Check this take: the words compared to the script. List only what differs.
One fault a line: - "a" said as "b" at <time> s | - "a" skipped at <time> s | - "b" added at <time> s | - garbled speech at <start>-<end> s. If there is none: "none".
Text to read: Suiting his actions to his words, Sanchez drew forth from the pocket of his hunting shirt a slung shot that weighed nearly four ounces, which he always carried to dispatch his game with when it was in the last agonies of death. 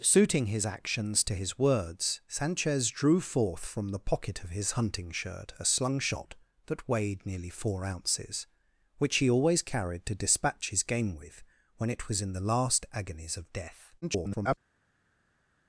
- garbled speech at 14.0-14.6 s